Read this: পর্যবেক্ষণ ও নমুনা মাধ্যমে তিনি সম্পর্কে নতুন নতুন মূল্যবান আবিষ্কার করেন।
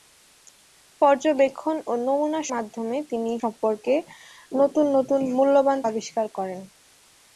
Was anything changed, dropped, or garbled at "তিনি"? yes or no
no